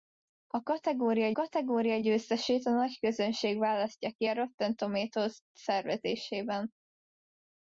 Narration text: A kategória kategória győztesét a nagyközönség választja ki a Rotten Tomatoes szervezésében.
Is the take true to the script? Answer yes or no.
yes